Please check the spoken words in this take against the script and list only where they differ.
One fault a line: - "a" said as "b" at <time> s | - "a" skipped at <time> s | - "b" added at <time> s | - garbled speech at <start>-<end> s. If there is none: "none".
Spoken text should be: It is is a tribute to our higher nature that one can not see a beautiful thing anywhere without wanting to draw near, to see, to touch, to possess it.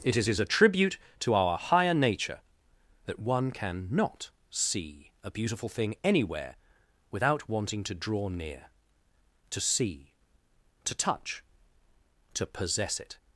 none